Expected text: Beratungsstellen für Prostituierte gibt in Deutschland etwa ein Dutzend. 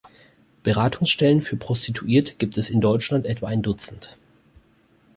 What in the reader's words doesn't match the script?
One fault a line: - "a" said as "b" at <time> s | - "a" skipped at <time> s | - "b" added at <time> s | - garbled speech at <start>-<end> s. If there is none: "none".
- "es" added at 2.6 s